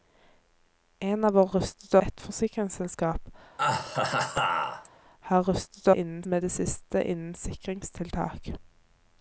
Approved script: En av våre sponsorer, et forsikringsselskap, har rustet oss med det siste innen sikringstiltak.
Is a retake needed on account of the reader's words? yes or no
yes